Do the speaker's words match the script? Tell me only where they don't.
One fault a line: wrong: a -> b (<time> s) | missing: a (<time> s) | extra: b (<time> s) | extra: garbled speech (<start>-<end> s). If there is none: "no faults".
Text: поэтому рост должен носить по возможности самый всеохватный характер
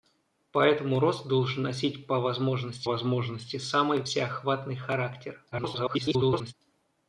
extra: возможности (2.8 s)
extra: garbled speech (5.5-6.5 s)